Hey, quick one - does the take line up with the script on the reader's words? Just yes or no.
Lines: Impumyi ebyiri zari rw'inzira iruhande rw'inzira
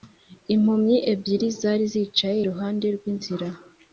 no